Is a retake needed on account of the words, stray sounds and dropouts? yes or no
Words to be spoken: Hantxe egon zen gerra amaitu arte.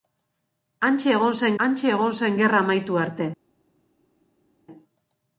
yes